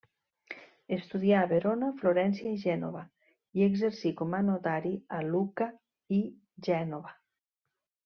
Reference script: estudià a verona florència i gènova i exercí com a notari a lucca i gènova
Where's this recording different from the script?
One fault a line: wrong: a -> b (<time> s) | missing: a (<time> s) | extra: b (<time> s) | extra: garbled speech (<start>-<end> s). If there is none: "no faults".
no faults